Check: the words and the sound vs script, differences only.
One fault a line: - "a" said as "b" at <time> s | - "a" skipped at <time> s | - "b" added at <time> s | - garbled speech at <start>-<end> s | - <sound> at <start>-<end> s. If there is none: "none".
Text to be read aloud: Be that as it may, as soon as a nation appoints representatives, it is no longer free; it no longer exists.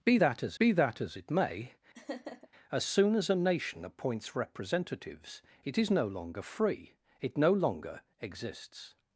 - "be that as" added at 0.6 s
- laugh at 1.9-2.5 s